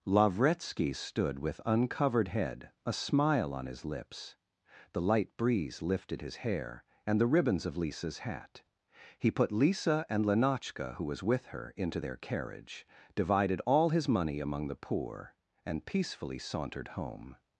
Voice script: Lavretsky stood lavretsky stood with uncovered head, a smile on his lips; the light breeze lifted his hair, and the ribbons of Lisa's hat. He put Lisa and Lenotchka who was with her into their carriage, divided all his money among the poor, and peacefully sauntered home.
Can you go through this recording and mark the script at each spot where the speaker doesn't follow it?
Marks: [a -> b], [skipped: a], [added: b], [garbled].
Lavretsky stood [skipped: lavretsky stood] with uncovered head, a smile on his lips; the light breeze lifted his hair, and the ribbons of Lisa's hat. He put Lisa and Lenotchka who was with her into their carriage, divided all his money among the poor, and peacefully sauntered home.